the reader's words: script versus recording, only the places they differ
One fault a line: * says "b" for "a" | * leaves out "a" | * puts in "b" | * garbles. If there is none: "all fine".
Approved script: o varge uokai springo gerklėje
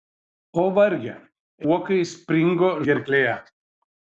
all fine